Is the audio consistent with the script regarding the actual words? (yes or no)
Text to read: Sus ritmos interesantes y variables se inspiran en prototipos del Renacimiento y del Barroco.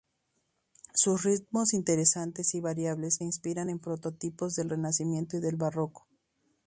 no